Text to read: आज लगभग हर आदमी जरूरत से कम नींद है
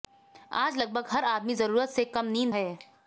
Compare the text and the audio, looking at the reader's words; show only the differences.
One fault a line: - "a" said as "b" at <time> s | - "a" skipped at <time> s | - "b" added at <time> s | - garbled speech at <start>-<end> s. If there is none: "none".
none